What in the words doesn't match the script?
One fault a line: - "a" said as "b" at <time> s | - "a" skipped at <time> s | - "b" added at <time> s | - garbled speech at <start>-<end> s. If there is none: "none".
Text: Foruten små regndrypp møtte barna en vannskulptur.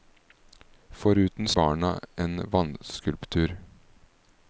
- "små regndrypp møtte" skipped at 1.5 s